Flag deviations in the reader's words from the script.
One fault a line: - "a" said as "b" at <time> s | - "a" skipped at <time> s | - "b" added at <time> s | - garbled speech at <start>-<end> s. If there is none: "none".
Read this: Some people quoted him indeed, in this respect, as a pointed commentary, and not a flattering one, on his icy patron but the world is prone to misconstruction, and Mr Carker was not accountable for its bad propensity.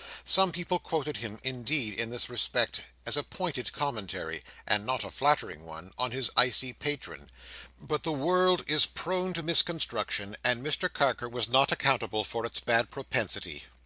none